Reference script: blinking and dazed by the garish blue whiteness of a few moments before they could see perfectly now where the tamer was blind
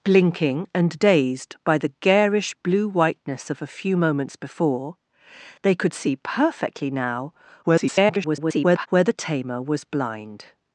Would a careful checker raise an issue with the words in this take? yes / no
yes